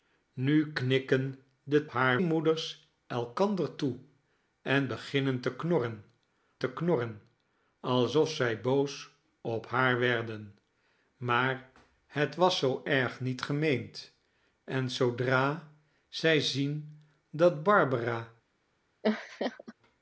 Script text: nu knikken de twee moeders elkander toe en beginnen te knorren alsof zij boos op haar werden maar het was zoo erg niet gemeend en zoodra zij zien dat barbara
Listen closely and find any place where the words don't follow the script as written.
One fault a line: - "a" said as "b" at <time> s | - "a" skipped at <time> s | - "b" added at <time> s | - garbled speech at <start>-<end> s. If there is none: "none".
- "twee" said as "haar" at 1.9 s
- "te knorren" added at 6.6 s